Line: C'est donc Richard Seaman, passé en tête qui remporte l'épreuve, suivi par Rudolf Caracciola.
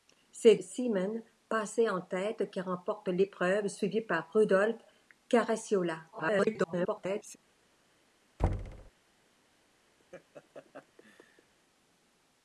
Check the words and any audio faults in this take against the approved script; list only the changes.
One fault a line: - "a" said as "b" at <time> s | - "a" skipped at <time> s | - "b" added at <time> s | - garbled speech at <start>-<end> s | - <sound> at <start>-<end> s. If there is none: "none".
- "donc Richard" skipped at 0.6 s
- garbled speech at 6.1-7.4 s
- thud at 8.4-8.9 s
- laugh at 10.0-11.5 s